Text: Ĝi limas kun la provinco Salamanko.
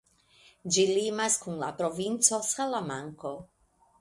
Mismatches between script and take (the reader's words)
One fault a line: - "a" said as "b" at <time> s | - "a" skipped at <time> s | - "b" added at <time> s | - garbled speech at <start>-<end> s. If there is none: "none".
none